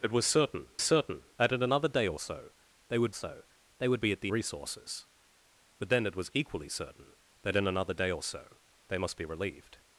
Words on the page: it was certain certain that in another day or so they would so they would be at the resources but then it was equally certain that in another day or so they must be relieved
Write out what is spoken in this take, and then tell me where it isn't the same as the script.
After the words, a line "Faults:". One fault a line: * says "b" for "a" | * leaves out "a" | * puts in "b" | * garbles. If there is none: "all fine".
it was certain certain that in another day or so they would so they would be at the resources but then it was equally certain that in another day or so they must be relieved
Faults:
all fine